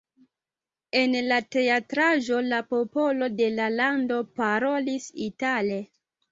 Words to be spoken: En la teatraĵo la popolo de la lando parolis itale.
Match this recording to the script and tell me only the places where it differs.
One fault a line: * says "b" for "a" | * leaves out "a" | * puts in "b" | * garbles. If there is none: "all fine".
all fine